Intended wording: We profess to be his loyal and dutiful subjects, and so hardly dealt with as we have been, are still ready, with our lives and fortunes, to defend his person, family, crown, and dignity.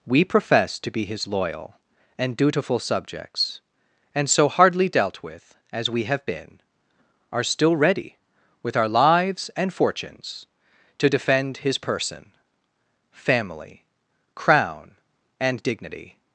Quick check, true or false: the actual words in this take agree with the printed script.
true